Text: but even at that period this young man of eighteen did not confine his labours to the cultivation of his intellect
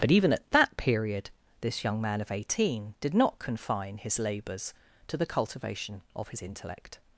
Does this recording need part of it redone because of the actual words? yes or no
no